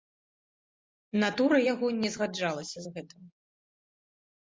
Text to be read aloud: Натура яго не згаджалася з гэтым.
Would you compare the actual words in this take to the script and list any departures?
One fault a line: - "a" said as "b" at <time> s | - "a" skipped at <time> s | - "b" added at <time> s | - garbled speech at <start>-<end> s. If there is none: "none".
none